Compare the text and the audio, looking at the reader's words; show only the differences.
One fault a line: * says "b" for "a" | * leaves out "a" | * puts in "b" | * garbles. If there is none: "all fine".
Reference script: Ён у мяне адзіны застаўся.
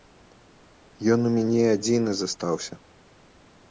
all fine